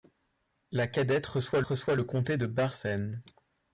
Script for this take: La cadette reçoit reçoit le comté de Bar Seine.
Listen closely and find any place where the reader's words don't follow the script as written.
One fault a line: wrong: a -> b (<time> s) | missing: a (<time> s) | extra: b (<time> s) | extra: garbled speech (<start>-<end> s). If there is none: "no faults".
no faults